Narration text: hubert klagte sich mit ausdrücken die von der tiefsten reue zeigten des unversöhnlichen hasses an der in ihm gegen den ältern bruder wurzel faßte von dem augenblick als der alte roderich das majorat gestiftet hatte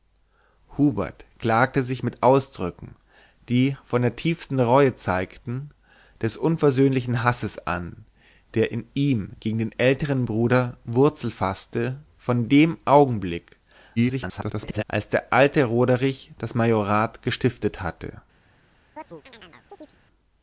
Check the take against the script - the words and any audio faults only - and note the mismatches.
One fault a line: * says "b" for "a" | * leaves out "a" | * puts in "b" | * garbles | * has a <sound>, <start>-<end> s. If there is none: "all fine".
* garbles
* has a chirp, 19.0-20.0 s